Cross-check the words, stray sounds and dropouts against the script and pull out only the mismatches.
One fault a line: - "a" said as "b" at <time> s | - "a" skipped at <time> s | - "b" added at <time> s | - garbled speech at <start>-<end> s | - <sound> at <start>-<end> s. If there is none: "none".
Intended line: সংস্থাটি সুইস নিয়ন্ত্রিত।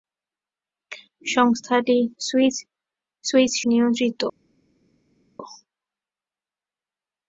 none